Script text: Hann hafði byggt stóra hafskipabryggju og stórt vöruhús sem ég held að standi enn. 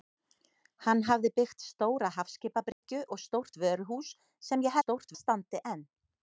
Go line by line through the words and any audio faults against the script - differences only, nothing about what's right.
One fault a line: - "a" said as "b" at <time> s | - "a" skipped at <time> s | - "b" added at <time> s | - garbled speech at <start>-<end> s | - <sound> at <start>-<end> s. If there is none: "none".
- dropout at 2.7-2.8 s
- "held" said as "stórt" at 4.8 s